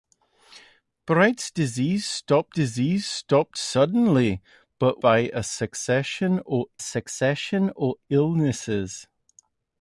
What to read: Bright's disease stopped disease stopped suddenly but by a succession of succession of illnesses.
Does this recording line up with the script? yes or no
yes